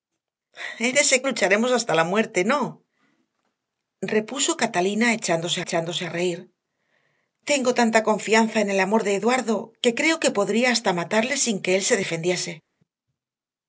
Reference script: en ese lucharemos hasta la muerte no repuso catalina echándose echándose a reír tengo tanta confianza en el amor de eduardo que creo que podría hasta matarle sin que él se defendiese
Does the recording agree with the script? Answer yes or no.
yes